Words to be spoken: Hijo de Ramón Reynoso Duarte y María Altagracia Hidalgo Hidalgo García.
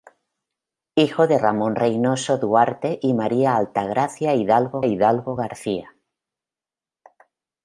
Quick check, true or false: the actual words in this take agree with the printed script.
true